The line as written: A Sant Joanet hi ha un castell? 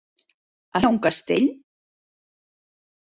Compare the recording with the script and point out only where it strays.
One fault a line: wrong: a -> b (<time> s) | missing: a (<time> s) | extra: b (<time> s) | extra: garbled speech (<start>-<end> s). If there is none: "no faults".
missing: Sant Joanet (0.8 s)